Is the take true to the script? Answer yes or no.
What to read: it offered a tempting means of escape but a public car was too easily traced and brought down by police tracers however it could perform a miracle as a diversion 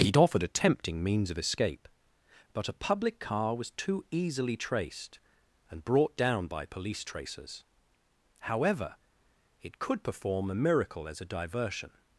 yes